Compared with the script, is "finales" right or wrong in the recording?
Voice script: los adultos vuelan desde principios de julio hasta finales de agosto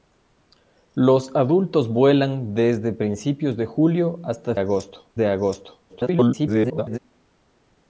wrong